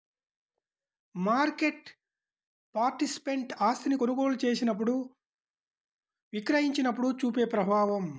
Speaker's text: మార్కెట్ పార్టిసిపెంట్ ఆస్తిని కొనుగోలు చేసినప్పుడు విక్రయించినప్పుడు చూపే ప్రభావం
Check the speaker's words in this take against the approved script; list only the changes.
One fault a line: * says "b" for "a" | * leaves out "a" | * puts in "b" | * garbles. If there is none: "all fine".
all fine